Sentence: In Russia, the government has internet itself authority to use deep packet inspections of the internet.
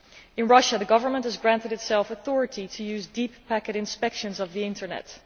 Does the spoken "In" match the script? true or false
true